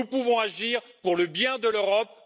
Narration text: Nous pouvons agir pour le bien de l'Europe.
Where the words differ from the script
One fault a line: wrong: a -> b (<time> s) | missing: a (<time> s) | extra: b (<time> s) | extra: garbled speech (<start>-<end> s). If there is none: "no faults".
no faults